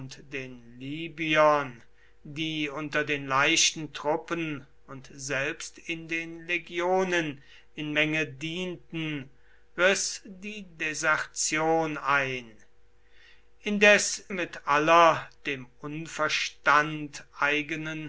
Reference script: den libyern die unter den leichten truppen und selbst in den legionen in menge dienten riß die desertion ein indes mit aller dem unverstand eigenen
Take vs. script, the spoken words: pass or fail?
pass